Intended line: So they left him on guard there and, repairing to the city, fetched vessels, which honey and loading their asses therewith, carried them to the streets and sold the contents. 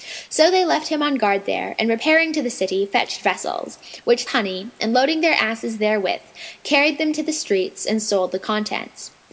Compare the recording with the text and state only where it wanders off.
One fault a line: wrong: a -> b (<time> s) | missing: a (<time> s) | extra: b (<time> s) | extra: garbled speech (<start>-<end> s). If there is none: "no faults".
no faults